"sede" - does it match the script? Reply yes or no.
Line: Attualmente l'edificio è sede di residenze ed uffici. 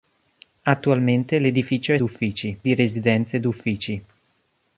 no